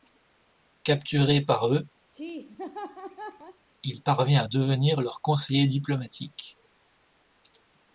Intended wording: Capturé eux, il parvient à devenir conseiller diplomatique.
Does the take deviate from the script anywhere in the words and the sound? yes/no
yes